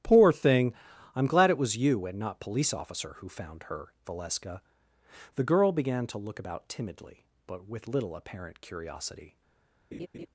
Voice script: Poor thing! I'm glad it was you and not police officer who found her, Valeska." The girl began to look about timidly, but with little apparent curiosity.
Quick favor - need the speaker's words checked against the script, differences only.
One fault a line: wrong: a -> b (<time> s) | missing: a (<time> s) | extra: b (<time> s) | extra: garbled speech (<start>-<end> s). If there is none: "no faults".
no faults